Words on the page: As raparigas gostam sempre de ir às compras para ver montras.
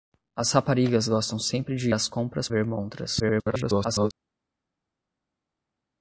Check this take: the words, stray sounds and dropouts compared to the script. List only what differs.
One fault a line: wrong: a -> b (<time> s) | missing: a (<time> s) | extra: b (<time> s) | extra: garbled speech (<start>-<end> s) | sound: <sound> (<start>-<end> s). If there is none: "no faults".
missing: ir (1.9 s)
missing: para (2.5 s)
extra: garbled speech (3.2-4.1 s)